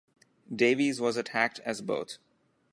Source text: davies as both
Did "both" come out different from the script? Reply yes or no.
no